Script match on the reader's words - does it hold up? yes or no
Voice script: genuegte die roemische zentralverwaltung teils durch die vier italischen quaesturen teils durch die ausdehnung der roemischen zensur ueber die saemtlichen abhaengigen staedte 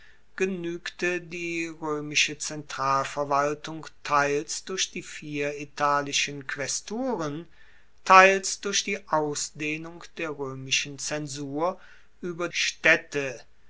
no